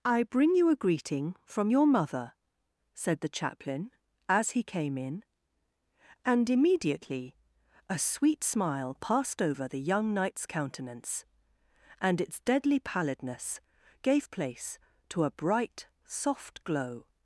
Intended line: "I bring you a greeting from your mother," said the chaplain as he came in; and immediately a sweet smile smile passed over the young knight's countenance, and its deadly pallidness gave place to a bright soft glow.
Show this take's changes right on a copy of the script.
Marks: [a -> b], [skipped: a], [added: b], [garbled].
"I bring you a greeting from your mother," said the chaplain as he came in; and immediately a sweet smile [skipped: smile] passed over the young knight's countenance, and its deadly pallidness gave place to a bright soft glow.